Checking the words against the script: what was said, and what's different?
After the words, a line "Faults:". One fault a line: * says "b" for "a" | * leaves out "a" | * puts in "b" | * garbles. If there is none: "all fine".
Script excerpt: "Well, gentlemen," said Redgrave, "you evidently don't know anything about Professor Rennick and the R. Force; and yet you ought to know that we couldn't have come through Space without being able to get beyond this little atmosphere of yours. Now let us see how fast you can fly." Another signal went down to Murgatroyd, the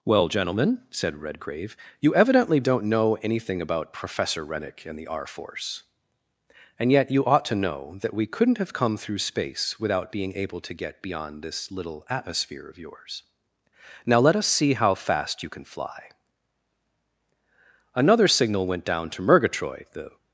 "Well, gentlemen," said Redgrave, "you evidently don't know anything about Professor Rennick and the R. Force; and yet you ought to know that we couldn't have come through Space without being able to get beyond this little atmosphere of yours. Now let us see how fast you can fly." Another signal went down to Murgatroyd, the
Faults:
all fine